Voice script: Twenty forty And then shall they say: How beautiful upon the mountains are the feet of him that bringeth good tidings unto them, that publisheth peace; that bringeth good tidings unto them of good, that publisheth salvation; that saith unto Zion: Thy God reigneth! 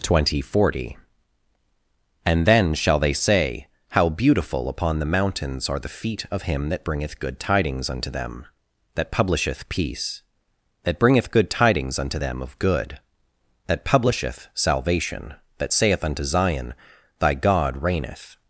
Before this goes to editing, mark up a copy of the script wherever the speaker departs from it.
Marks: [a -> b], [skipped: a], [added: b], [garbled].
Twenty forty And then shall they say: How beautiful upon the mountains are the feet of him that bringeth good tidings unto them, that publisheth peace; that bringeth good tidings unto them of good, that publisheth salvation; that saith unto Zion: Thy God reigneth!